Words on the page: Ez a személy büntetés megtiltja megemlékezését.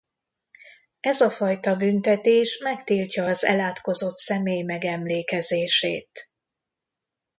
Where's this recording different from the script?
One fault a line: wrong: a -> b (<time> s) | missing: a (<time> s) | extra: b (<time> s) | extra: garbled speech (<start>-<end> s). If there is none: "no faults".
wrong: személy -> fajta (1.3 s)
extra: az elátkozott személy (3.2 s)